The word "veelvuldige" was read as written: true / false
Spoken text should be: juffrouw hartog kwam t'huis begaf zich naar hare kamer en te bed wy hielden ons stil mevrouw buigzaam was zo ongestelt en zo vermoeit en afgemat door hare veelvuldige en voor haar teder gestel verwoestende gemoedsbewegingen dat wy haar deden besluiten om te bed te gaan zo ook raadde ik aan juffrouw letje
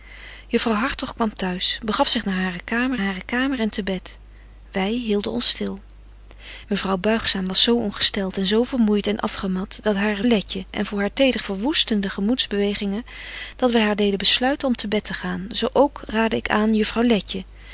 false